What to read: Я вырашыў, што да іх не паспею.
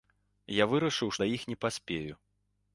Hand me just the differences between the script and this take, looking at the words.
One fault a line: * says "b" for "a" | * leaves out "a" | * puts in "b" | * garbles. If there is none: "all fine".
* leaves out "што"